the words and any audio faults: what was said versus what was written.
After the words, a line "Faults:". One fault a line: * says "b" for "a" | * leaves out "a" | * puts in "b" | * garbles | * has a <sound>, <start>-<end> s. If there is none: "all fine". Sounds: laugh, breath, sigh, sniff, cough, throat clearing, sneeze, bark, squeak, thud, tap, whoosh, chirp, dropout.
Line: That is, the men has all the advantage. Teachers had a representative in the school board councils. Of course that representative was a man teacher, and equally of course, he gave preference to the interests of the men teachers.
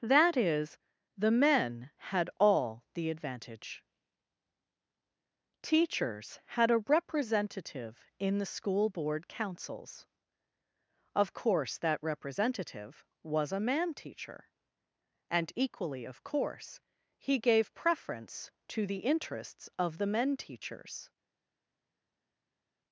That is, the men had all the advantage. Teachers had a representative in the school board councils. Of course that representative was a man teacher, and equally of course, he gave preference to the interests of the men teachers.
Faults:
* says "had" for "has"